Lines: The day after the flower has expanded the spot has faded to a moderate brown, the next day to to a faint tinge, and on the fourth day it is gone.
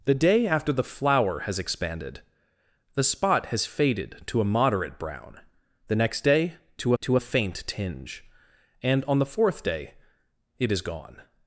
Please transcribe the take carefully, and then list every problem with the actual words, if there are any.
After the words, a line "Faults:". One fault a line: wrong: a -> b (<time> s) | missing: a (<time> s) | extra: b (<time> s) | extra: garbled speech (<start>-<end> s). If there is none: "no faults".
The day after the flower has expanded the spot has faded to a moderate brown, the next day to to a faint tinge, and on the fourth day it is gone.
Faults:
no faults